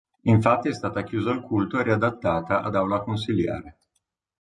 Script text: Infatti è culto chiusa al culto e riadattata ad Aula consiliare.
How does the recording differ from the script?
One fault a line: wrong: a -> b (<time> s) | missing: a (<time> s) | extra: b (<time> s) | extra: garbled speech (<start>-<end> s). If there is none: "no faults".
wrong: culto -> stata (0.7 s)